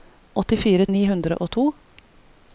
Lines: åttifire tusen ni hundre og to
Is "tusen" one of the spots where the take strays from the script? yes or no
yes